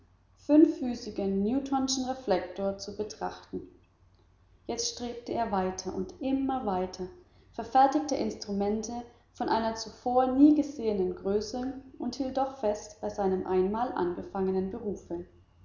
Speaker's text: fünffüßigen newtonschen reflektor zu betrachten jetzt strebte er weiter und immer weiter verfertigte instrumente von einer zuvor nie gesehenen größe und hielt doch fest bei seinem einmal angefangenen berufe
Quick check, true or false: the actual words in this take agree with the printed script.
true